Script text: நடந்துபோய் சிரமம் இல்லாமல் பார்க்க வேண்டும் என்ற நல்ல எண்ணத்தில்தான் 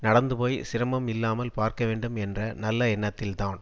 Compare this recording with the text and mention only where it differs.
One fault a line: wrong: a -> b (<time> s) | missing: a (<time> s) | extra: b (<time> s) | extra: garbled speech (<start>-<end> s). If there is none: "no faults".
no faults